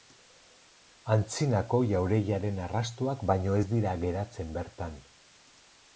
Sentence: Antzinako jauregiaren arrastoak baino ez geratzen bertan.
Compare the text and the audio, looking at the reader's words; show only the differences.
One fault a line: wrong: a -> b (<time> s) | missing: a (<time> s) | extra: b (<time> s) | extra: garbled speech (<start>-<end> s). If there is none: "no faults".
extra: dira (3.7 s)